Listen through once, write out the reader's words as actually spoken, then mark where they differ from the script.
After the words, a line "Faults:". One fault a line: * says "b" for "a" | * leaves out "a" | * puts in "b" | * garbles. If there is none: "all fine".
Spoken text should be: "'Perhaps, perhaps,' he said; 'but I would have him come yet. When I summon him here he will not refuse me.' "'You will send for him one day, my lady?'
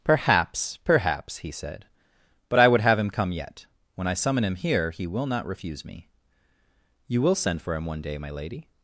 "'Perhaps, perhaps,' he said; 'but I would have him come yet. When I summon him here he will not refuse me.' "'You will send for him one day, my lady?'
Faults:
all fine